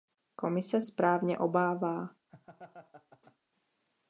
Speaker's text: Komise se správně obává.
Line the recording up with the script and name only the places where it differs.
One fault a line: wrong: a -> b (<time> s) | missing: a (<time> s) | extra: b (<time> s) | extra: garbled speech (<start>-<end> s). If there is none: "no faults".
missing: se (0.8 s)